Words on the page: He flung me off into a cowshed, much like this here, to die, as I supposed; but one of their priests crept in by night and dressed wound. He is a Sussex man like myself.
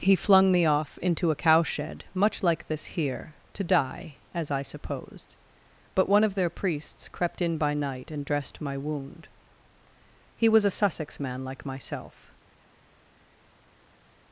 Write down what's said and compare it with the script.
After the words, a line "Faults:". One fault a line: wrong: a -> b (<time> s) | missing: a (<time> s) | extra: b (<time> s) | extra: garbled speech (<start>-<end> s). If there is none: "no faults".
He flung me off into a cowshed, much like this here, to die, as I supposed; but one of their priests crept in by night and dressed my wound. He was a Sussex man like myself.
Faults:
extra: my (8.6 s)
wrong: is -> was (10.5 s)